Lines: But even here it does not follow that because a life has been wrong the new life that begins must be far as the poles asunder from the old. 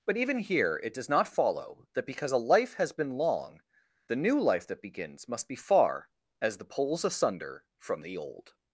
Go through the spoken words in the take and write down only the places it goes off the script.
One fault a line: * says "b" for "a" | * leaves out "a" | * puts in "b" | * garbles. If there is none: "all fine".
* says "long" for "wrong"